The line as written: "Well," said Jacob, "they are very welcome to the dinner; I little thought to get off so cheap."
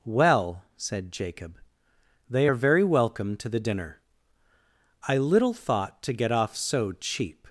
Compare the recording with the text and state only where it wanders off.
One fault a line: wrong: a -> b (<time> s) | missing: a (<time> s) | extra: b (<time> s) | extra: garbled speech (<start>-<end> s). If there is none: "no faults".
no faults